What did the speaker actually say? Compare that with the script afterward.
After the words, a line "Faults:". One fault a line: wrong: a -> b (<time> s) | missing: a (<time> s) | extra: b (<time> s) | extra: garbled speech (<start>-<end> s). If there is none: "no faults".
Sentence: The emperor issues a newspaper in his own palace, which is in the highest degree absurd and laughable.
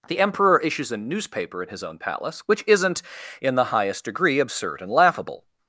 The emperor issues a newspaper in his own palace, which isn't in the highest degree absurd and laughable.
Faults:
wrong: is -> isn't (2.7 s)